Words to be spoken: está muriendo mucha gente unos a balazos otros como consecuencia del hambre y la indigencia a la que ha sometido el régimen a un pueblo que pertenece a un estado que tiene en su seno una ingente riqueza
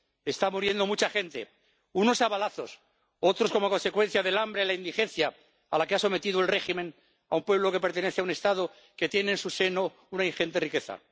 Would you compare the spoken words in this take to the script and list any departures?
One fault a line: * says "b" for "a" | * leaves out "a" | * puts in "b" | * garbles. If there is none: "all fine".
all fine